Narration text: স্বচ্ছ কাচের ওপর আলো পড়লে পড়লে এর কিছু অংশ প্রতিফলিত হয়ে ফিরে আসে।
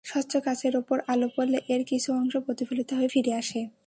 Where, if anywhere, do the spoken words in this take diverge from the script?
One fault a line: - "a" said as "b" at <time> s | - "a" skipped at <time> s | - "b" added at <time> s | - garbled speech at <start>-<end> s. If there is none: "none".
- "পড়লে" skipped at 1.6 s